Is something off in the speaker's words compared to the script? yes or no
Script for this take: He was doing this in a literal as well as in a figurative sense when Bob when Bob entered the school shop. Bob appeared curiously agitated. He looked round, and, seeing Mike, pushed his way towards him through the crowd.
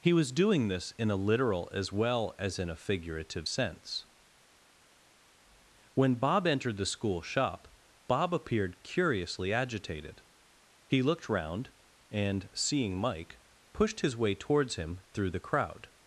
yes